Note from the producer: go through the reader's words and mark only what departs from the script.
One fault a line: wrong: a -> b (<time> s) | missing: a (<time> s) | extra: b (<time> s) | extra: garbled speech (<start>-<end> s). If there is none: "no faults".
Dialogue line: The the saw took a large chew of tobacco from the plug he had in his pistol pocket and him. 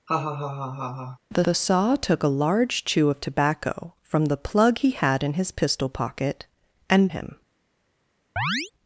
no faults